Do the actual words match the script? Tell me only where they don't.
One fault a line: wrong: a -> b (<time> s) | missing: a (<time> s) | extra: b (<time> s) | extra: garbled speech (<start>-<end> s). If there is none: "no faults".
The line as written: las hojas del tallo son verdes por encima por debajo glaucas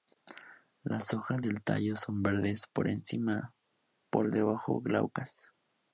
no faults